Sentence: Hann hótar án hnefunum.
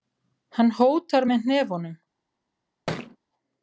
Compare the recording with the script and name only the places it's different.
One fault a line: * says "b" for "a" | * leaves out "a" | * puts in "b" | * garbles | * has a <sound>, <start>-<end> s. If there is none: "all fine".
* says "með" for "án"
* has a thud, 2.9-3.2 s